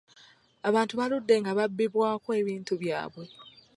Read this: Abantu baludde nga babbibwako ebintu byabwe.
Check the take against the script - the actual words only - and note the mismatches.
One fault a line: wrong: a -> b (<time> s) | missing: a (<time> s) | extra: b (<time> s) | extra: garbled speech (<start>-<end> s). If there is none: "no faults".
no faults